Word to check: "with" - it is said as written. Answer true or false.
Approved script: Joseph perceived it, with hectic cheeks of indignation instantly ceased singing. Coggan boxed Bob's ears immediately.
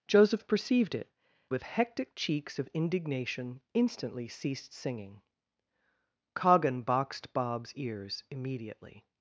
true